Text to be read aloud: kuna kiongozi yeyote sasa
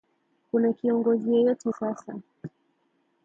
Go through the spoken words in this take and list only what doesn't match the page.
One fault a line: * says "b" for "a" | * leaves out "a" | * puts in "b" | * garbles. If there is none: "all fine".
all fine